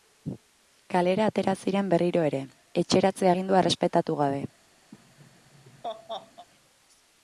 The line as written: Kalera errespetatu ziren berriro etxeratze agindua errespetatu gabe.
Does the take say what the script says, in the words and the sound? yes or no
no